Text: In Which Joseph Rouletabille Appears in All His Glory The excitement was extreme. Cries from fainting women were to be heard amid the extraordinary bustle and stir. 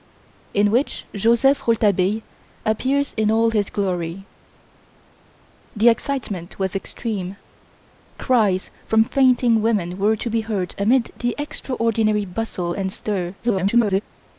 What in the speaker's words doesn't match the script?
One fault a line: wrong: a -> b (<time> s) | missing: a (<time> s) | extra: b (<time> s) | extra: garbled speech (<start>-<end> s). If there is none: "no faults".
extra: garbled speech (13.4-14.0 s)